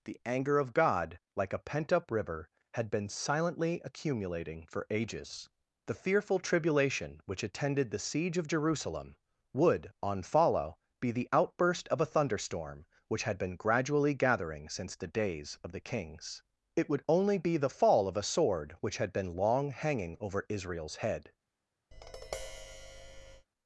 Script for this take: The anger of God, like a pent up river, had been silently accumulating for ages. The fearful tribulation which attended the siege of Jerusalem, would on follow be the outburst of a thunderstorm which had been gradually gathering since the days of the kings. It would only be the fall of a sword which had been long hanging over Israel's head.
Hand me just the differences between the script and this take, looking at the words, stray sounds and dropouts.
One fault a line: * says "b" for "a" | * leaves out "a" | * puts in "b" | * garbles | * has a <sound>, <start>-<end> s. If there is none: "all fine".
* has a tap, 21.9-23.5 s